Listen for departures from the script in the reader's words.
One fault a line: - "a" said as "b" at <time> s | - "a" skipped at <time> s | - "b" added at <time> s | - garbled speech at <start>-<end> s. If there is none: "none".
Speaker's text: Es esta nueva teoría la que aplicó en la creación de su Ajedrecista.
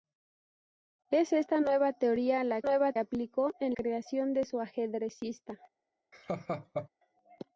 - "que" said as "nueva" at 2.6 s
- "la" skipped at 3.8 s